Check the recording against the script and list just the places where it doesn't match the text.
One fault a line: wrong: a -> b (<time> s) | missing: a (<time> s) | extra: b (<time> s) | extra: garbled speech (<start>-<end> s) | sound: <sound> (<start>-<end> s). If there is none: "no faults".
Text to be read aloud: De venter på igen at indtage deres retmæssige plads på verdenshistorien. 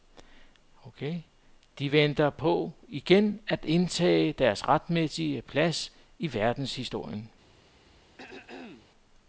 wrong: på -> i (6.2 s)
sound: throat clearing (8.2-8.9 s)